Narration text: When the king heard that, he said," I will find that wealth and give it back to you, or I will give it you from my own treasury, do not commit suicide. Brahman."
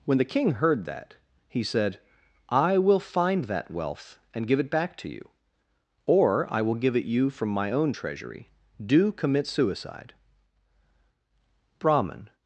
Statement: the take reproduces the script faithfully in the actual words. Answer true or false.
false